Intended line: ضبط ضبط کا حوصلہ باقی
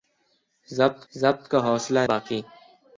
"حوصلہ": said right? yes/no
yes